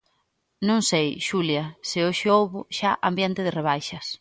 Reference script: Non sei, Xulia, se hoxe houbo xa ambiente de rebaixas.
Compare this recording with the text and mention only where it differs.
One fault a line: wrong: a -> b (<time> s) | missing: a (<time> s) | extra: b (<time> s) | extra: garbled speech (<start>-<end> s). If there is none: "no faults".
no faults